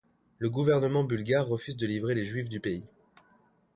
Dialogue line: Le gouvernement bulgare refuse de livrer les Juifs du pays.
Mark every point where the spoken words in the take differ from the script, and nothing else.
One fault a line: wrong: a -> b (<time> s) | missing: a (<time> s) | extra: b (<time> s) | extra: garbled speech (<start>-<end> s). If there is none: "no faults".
no faults